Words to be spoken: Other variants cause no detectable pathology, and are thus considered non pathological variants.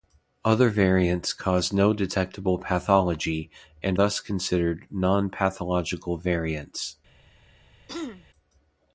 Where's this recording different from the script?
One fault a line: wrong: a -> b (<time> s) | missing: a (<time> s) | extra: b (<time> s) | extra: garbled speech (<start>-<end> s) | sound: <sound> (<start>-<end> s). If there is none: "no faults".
missing: are (4.0 s)
sound: throat clearing (7.9-8.2 s)